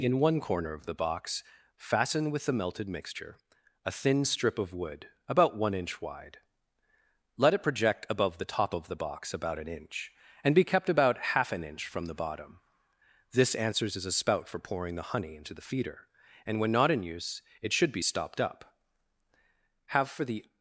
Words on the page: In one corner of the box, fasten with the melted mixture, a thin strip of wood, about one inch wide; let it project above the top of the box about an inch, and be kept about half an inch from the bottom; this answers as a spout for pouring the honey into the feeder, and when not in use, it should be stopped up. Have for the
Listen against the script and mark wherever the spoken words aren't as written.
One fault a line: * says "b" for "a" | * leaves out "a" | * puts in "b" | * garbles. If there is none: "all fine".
all fine